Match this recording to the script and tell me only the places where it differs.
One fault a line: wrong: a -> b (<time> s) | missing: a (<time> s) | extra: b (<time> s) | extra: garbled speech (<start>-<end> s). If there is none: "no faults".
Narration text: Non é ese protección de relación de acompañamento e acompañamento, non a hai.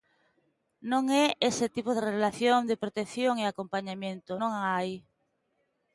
wrong: protección -> tipo (1.8 s)
wrong: acompañamento -> protección (2.8 s)